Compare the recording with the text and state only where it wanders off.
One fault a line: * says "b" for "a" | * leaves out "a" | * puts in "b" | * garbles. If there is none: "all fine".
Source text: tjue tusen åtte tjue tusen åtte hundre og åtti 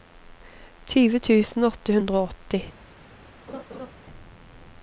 * leaves out "tjue tusen åtte"